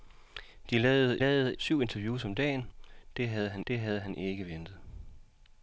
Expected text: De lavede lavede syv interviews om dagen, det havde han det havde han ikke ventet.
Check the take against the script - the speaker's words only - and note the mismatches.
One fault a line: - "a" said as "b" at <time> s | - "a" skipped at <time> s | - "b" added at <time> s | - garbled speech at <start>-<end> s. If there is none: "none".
none